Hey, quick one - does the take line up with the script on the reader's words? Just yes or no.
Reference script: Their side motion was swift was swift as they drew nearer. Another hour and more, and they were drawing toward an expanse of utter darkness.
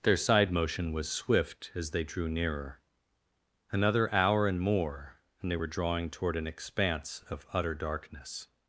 no